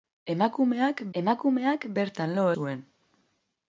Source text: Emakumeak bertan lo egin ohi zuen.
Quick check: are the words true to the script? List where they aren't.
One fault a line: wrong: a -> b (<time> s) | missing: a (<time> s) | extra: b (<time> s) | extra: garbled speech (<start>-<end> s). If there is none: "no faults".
extra: emakumeak (1.2 s)
missing: egin ohi (2.5 s)